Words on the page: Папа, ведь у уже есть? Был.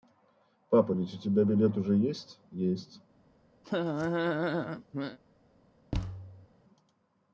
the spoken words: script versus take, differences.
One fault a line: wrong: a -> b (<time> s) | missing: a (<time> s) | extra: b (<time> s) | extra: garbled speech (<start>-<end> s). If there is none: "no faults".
extra: тебя билет (1.2 s)
wrong: Был -> Есть (2.5 s)